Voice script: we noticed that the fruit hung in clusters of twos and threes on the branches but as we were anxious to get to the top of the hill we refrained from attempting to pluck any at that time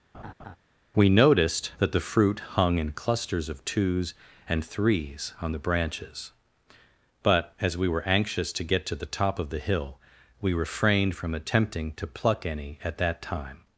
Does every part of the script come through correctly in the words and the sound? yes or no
no